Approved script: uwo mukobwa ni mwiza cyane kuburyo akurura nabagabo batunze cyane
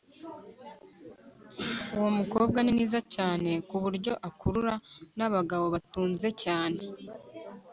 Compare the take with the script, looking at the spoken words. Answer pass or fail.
pass